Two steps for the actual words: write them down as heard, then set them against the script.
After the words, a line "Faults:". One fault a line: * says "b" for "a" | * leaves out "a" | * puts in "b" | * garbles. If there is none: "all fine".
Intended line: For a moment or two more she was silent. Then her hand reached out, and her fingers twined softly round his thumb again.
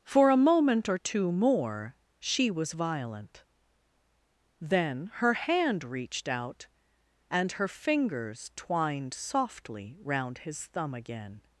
For a moment or two more she was violent. Then her hand reached out, and her fingers twined softly round his thumb again.
Faults:
* says "violent" for "silent"